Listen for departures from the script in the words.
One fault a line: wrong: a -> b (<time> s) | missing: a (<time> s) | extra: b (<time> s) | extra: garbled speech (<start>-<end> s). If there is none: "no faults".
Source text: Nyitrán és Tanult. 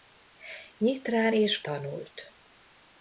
no faults